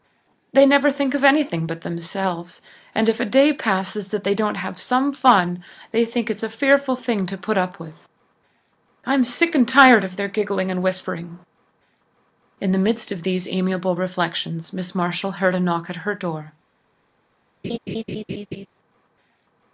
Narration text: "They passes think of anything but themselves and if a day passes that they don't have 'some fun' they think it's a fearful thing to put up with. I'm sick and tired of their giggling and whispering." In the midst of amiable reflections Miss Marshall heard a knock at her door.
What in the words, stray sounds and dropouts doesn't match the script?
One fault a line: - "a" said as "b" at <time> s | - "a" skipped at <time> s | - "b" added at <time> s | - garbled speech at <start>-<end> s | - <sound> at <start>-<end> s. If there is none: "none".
- "passes" said as "never" at 0.7 s
- "these" added at 13.2 s
- laugh at 17.6-18.7 s